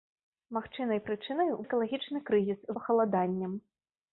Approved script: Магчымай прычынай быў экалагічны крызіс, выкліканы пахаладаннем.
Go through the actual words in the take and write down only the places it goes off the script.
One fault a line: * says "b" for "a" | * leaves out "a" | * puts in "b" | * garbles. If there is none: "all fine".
* leaves out "быў"
* leaves out "выкліканы"